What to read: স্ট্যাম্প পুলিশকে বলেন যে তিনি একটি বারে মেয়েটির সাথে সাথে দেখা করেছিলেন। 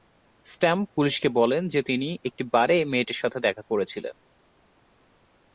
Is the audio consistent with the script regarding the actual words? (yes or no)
no